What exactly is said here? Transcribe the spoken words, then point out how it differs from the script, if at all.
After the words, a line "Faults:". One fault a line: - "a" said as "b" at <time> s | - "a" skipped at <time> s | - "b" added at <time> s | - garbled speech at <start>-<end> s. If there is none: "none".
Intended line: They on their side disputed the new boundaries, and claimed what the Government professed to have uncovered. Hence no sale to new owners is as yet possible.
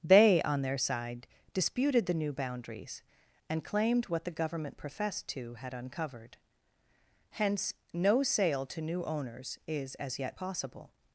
They on their side disputed the new boundaries, and claimed what the Government professed to had uncovered. Hence no sale to new owners is as yet possible.
Faults:
- "have" said as "had" at 5.5 s